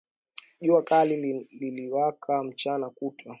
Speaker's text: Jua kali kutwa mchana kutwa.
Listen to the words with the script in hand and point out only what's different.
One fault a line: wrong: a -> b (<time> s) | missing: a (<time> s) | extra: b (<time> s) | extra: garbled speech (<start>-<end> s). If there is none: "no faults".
wrong: kutwa -> liliwaka (1.6 s)